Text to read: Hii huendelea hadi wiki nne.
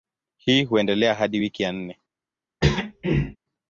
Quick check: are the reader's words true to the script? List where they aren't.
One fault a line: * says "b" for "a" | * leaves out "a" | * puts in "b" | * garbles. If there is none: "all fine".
* puts in "ya"